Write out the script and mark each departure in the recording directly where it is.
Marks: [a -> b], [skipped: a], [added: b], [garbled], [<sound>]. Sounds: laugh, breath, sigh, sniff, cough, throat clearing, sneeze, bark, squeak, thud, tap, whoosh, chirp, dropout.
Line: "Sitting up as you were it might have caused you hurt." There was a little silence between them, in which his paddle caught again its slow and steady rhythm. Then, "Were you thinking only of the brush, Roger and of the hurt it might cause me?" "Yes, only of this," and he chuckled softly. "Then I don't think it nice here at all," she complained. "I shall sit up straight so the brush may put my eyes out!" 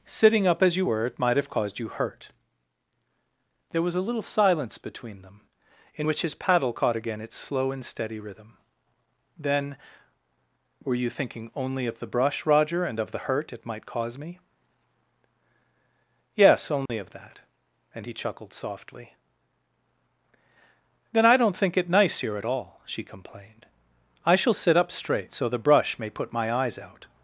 "Sitting up as you were it might have caused you hurt." There was a little silence between them, in which his paddle caught again its slow and steady rhythm. Then, "Were you thinking only of the brush, Roger and of the hurt it might cause me?" "Yes, only [dropout] of [this," -> that] and he chuckled softly. "Then I don't think it nice here at all," she complained. "I shall sit up straight so the brush may put my eyes out!"